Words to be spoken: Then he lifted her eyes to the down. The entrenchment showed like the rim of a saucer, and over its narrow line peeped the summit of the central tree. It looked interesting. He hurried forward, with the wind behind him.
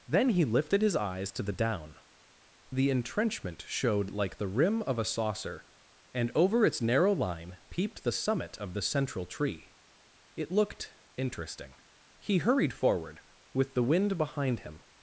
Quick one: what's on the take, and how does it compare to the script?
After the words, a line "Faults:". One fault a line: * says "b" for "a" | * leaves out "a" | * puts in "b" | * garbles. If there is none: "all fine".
Then he lifted his eyes to the down. The entrenchment showed like the rim of a saucer, and over its narrow line peeped the summit of the central tree. It looked interesting. He hurried forward, with the wind behind him.
Faults:
* says "his" for "her"